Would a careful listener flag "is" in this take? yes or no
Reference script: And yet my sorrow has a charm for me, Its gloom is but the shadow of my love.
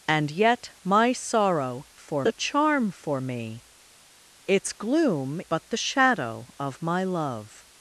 yes